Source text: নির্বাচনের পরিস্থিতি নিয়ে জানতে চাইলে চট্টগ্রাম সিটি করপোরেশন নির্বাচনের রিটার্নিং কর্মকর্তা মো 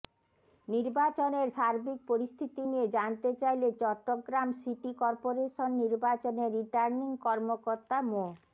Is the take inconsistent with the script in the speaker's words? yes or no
yes